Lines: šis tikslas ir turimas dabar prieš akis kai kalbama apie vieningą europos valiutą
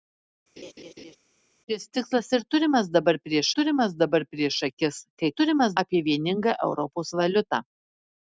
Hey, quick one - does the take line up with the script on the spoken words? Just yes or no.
no